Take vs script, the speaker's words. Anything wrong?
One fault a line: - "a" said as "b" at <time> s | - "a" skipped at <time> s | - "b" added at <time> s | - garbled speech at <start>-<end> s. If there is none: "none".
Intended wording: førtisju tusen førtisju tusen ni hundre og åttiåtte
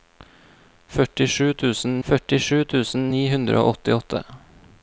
none